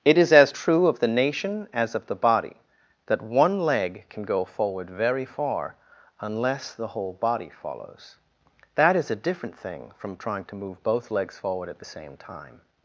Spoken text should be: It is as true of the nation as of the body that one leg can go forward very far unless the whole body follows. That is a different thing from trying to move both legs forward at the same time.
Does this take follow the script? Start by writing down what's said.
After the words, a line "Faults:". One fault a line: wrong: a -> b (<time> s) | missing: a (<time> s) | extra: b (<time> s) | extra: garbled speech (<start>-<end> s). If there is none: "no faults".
It is as true of the nation as of the body that one leg can go forward very far unless the whole body follows. That is a different thing from trying to move both legs forward at the same time.
Faults:
no faults